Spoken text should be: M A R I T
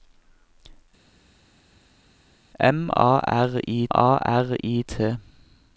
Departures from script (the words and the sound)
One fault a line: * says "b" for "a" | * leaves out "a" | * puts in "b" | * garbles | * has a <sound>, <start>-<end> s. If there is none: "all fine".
* puts in "A R I"